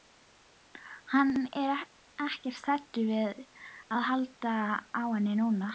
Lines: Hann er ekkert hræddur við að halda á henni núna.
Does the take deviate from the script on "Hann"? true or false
false